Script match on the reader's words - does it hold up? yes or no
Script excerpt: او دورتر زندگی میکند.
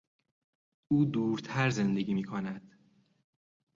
yes